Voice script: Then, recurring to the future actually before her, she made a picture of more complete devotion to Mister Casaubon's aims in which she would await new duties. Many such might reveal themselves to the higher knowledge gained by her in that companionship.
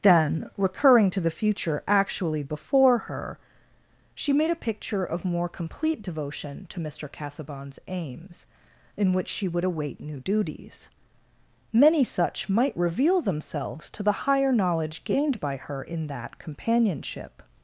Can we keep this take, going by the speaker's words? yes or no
yes